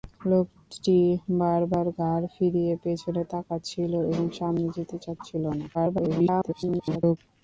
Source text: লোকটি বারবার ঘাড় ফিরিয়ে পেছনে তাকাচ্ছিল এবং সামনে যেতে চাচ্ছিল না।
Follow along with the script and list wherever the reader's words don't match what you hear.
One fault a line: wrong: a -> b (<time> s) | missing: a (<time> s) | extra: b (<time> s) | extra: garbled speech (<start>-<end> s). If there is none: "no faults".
extra: garbled speech (5.7-7.2 s)